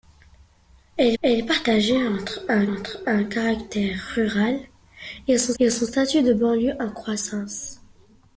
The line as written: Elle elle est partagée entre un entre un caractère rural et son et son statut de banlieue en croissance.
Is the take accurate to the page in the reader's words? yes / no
yes